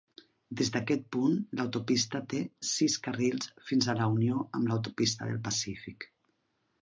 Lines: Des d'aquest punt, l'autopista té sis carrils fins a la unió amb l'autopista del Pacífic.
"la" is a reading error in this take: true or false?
false